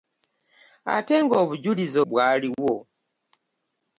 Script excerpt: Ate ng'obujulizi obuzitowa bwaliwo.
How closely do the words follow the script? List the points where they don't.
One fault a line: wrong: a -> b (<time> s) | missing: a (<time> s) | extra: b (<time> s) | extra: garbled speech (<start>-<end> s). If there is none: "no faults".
missing: obuzitowa (2.0 s)